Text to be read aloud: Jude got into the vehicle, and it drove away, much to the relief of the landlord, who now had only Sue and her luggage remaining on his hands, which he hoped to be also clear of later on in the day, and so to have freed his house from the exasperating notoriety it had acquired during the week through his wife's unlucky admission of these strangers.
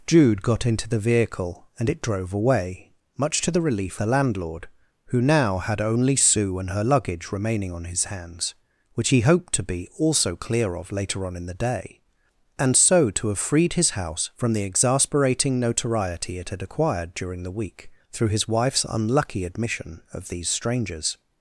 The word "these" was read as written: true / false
true